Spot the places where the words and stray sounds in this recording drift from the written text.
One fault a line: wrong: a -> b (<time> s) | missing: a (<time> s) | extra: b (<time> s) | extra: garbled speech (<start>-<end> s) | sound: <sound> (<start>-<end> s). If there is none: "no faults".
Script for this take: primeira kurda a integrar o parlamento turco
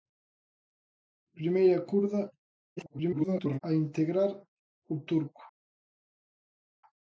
extra: garbled speech (2.8-3.6 s)
missing: parlamento (5.0 s)